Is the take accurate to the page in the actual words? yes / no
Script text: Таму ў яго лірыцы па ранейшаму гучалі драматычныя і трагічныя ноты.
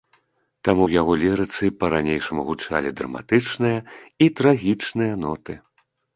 yes